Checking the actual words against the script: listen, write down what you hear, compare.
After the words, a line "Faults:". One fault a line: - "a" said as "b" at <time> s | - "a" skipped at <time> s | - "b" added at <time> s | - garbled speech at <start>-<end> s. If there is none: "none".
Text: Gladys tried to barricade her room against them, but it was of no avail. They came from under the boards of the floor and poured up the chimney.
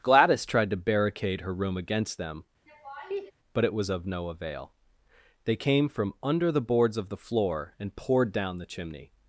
Gladys tried to barricade her room against them, but it was of no avail. They came from under the boards of the floor and poured down the chimney.
Faults:
- "up" said as "down" at 8.3 s